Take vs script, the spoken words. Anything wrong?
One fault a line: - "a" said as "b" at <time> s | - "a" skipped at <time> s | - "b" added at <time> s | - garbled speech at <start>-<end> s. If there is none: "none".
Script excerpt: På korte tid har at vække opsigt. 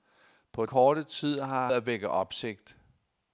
none